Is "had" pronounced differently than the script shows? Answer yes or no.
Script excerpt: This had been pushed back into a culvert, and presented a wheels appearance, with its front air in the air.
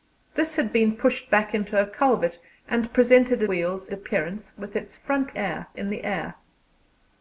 no